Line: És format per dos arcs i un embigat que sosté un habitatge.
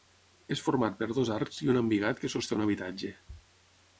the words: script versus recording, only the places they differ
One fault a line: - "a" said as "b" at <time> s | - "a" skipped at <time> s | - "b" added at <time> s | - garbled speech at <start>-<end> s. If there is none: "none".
none